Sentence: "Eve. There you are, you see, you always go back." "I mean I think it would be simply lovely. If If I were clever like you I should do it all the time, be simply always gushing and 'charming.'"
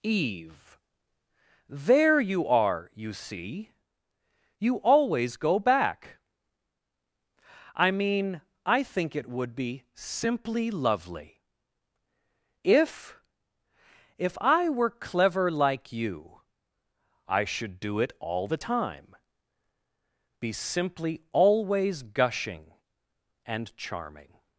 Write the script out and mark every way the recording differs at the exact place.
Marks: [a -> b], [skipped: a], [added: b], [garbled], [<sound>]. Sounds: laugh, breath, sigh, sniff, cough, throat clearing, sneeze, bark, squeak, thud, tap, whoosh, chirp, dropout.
"Eve. There you are, you see, you always go back." "I mean I think it would be simply lovely. If If I were clever like you I should do it all the time, be simply always gushing and 'charming.'"